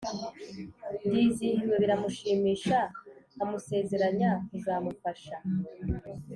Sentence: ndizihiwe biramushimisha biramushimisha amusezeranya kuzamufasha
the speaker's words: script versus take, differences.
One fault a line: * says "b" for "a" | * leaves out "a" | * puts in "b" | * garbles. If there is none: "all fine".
* leaves out "biramushimisha"